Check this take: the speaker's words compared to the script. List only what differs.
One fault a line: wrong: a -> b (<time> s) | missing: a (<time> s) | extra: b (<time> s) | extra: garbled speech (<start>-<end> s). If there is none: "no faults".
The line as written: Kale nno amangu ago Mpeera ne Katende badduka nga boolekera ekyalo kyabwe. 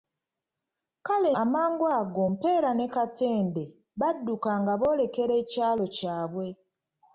missing: nno (1.3 s)